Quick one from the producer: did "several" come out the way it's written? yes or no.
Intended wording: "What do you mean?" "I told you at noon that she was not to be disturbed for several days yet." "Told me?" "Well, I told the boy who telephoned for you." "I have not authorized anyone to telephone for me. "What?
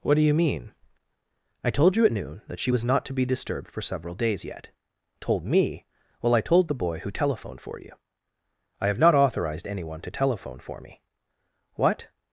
yes